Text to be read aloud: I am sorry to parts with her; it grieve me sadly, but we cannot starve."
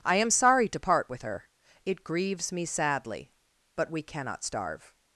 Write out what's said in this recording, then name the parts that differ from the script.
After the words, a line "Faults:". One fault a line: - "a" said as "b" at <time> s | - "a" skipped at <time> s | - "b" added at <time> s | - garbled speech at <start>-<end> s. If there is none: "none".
I am sorry to part with her; it grieves me sadly, but we cannot starve."
Faults:
- "parts" said as "part" at 0.8 s
- "grieve" said as "grieves" at 2.0 s